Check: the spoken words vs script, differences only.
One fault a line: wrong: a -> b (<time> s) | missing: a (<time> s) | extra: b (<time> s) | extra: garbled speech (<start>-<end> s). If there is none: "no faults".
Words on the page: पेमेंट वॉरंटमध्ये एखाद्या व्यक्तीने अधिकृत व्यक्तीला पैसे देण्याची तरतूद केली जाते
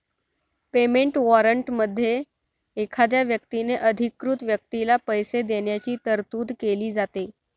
no faults